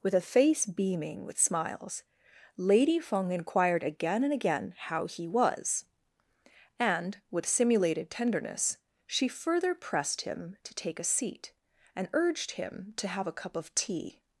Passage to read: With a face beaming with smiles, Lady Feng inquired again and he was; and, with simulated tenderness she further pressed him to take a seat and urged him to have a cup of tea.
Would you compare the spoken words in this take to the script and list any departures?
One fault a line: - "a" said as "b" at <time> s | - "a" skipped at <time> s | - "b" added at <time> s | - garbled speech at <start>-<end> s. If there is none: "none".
- "again how" added at 4.3 s